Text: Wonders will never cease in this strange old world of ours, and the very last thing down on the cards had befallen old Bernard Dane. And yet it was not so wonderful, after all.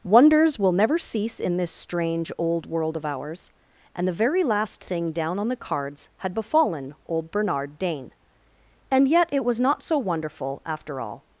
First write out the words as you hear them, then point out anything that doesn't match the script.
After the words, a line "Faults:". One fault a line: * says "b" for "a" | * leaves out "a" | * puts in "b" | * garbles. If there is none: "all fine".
Wonders will never cease in this strange old world of ours, and the very last thing down on the cards had befallen old Bernard Dane. And yet it was not so wonderful, after all.
Faults:
all fine